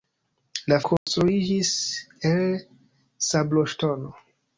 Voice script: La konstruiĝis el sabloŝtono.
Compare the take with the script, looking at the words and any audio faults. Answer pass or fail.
fail